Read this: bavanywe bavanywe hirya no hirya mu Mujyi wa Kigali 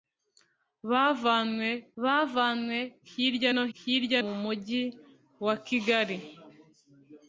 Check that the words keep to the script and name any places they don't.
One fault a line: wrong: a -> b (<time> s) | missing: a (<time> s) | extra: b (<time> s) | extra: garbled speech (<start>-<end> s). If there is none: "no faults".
no faults